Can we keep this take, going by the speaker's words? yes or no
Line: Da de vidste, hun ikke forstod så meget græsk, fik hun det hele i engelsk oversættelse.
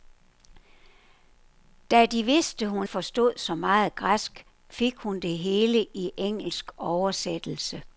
no